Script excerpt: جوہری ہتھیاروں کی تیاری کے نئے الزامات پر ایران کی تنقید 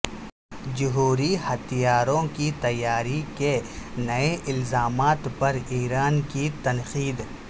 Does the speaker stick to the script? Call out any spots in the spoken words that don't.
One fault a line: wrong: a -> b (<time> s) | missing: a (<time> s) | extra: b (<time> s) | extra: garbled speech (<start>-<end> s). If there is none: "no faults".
no faults